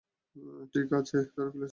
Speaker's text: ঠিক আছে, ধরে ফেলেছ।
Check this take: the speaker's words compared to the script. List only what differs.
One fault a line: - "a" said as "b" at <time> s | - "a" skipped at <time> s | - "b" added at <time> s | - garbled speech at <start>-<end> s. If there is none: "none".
none